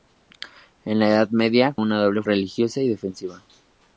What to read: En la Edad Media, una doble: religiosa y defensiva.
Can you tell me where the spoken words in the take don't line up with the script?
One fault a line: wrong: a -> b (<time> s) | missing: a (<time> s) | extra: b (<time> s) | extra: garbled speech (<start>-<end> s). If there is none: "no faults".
no faults